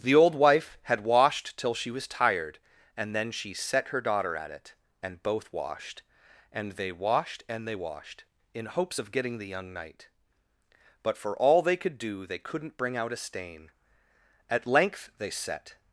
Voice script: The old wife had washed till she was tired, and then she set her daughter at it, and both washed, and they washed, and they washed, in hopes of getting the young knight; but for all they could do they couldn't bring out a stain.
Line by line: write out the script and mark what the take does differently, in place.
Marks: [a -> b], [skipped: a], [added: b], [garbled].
The old wife had washed till she was tired, and then she set her daughter at it, and both washed, and they washed, and they washed, in hopes of getting the young knight; but for all they could do they couldn't bring out a stain. [added: At length they set]